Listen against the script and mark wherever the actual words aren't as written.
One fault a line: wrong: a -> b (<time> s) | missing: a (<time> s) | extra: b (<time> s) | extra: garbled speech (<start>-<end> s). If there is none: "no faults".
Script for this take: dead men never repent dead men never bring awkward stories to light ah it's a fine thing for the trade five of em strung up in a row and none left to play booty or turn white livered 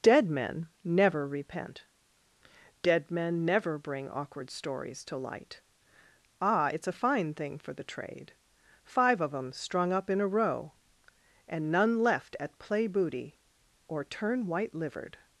wrong: to -> at (12.4 s)